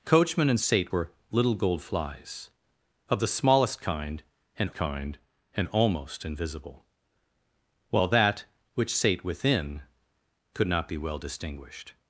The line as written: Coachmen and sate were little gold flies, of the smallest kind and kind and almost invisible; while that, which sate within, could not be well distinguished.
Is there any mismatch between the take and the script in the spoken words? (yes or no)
no